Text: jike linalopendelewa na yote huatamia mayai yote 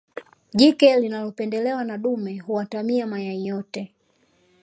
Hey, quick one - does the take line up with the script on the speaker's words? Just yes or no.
no